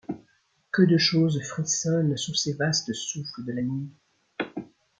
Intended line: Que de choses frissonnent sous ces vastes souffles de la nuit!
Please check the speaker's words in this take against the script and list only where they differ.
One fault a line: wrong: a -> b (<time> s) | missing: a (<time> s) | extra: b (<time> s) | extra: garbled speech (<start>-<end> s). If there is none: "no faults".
no faults